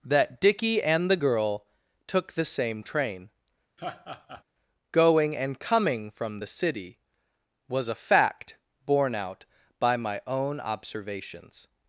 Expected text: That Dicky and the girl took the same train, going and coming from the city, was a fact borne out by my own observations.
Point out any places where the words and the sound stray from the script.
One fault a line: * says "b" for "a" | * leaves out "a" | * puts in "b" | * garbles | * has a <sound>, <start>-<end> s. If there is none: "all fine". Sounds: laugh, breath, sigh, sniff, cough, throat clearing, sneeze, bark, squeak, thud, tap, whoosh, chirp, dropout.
* has a laugh, 3.8-4.4 s